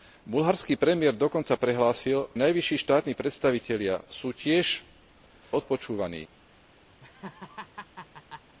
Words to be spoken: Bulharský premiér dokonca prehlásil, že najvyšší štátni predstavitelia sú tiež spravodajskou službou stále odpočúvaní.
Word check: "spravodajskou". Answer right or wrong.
wrong